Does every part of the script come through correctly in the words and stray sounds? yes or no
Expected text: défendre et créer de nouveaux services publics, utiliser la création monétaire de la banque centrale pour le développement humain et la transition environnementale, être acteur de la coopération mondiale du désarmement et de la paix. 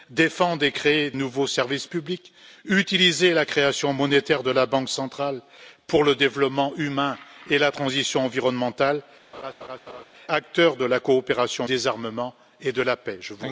no